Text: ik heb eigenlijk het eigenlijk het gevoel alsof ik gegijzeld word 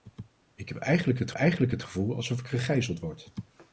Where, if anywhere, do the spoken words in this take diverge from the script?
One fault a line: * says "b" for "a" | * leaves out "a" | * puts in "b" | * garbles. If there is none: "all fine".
all fine